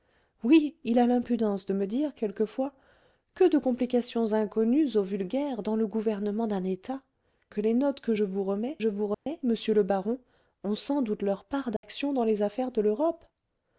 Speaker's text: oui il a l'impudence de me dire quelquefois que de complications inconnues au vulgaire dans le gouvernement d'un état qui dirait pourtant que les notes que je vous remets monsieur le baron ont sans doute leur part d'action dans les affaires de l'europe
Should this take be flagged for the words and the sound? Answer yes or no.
yes